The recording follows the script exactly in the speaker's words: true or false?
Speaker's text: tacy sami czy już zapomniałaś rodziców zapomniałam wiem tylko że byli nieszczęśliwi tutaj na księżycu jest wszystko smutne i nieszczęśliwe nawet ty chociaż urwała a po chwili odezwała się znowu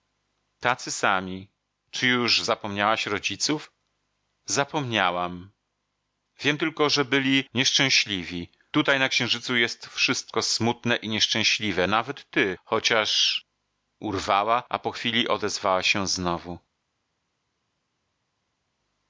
true